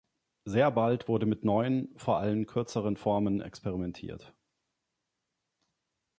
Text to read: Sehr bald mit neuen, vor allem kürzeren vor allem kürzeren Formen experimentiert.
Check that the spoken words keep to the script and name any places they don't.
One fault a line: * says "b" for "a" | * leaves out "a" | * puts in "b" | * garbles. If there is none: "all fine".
* puts in "wurde"
* leaves out "vor allem kürzeren"